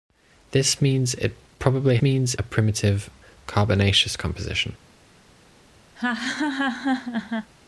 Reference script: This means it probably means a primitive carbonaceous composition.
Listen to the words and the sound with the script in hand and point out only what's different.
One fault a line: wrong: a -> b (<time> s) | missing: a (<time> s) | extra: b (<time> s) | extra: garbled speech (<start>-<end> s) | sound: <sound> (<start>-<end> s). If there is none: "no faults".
sound: laugh (5.9-7.5 s)